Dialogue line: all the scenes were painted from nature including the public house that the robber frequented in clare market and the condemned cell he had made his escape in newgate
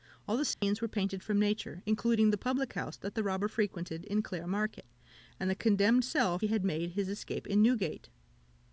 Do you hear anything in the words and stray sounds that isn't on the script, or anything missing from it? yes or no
yes